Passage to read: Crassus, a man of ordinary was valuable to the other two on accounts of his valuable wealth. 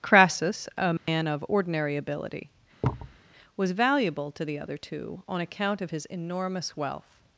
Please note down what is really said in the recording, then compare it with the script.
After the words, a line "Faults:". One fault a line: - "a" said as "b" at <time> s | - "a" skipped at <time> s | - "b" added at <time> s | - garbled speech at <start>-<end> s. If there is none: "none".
Crassus, a man of ordinary ability, was valuable to the other two on account of his enormous wealth.
Faults:
- "ability" added at 2.0 s
- "accounts" said as "account" at 5.4 s
- "valuable" said as "enormous" at 6.1 s